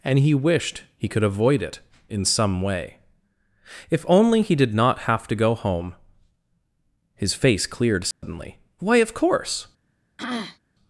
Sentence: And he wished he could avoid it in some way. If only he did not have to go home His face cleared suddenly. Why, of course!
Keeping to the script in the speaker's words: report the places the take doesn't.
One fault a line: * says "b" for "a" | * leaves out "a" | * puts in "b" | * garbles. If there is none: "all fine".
all fine